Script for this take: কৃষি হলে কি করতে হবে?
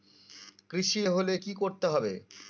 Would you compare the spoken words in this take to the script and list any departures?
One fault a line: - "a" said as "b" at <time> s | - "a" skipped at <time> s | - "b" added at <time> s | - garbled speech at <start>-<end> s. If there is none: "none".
none